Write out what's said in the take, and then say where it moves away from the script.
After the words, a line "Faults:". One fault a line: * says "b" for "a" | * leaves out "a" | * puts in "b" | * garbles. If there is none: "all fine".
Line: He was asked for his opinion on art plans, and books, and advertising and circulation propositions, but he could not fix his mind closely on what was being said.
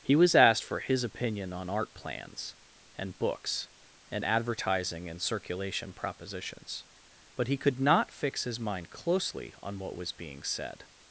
He was asked for his opinion on art plans, and books, and advertising and circulation propositions, but he could not fix his mind closely on what was being said.
Faults:
all fine